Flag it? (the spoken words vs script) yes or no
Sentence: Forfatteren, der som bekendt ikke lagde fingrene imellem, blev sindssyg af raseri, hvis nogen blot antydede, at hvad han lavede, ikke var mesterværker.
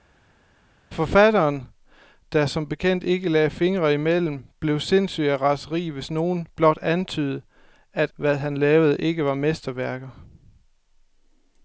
no